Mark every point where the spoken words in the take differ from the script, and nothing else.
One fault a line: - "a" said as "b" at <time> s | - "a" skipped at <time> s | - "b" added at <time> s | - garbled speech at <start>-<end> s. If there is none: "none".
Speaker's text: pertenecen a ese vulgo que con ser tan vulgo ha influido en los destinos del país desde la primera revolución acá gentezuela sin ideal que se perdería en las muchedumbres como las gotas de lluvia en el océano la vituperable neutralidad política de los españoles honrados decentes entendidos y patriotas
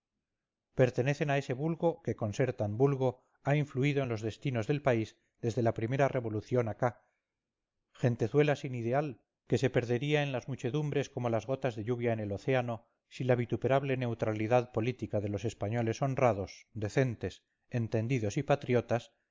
- "si" added at 13.1 s